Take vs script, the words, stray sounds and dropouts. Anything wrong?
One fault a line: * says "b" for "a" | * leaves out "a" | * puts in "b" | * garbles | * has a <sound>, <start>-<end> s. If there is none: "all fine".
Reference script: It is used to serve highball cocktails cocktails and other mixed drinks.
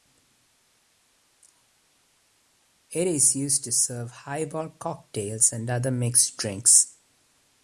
* leaves out "cocktails"